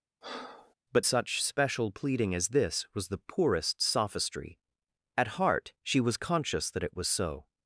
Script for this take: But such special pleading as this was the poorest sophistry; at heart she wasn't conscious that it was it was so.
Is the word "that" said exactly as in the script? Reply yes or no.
yes